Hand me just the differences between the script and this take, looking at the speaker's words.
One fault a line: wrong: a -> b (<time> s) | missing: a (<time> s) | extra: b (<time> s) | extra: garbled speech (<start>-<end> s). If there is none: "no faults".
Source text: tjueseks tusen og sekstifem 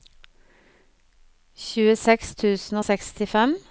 no faults